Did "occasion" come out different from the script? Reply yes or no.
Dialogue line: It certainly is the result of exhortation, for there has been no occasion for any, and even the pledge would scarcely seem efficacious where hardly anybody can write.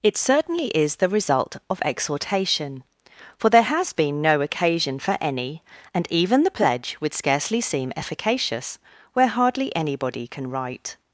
no